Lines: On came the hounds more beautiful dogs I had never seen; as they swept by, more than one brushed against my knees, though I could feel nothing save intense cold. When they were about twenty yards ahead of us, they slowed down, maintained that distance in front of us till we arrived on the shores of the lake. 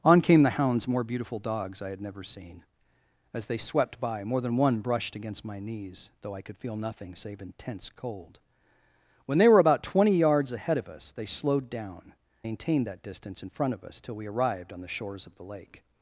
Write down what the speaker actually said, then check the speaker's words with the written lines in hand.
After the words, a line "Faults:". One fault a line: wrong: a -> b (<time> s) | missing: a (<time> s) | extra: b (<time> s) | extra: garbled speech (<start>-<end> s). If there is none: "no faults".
On came the hounds more beautiful dogs I had never seen; as they swept by, more than one brushed against my knees, though I could feel nothing save intense cold. When they were about twenty yards ahead of us, they slowed down, maintained that distance in front of us till we arrived on the shores of the lake.
Faults:
no faults